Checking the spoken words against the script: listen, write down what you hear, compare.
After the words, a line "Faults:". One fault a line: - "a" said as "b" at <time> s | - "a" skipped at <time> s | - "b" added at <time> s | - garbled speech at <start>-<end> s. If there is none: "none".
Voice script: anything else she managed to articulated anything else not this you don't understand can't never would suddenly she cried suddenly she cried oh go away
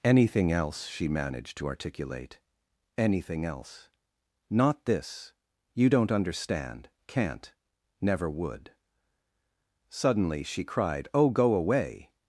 anything else she managed to articulate anything else not this you don't understand can't never would suddenly she cried oh go away
Faults:
- "articulated" said as "articulate" at 1.7 s
- "suddenly she cried" skipped at 11.1 s